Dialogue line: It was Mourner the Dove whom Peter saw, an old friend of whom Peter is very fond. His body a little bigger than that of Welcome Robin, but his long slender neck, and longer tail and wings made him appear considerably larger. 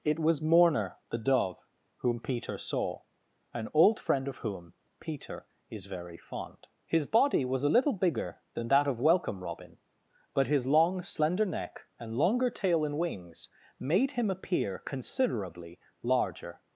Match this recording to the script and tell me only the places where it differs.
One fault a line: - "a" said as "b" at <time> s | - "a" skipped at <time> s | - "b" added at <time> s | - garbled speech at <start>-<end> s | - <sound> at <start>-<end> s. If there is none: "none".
- "was" added at 7.5 s